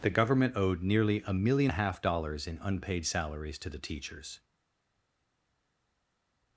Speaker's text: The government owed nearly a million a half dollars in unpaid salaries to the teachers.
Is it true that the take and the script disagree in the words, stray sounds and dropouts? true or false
false